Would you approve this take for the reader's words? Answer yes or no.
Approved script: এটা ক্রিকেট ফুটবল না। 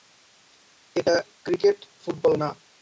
yes